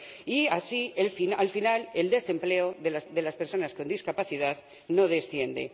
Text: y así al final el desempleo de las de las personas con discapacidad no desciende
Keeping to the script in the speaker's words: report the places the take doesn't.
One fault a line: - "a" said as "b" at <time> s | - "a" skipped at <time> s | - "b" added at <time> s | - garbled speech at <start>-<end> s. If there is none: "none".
none